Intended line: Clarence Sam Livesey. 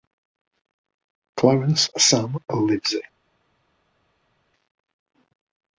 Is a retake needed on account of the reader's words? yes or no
no